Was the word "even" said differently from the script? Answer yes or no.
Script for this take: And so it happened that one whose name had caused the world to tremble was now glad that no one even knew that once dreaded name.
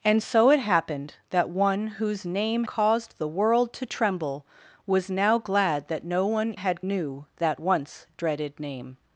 yes